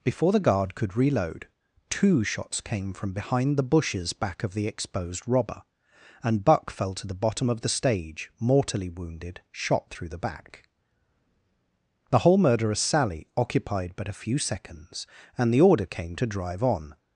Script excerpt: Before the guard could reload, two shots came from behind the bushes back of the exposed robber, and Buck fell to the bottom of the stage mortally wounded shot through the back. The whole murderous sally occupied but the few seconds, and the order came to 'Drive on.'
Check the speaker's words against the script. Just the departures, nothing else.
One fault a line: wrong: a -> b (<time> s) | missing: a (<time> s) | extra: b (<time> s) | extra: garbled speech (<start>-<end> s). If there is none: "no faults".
wrong: the -> a (14.1 s)